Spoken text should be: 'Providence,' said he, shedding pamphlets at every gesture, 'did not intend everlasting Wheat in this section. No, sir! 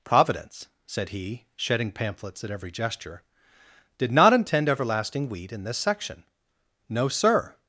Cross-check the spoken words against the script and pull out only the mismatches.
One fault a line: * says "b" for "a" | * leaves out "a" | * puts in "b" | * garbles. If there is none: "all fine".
all fine